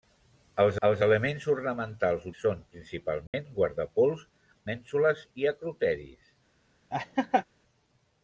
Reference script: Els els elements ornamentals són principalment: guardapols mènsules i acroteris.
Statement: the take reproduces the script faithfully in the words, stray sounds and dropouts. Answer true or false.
false